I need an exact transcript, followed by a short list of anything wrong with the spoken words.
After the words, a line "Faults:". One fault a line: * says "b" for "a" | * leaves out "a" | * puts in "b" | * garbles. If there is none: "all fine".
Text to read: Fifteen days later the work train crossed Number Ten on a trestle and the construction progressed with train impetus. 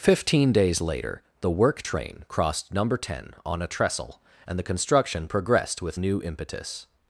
Fifteen days later the work train crossed Number Ten on a trestle and the construction progressed with new impetus.
Faults:
* says "new" for "train"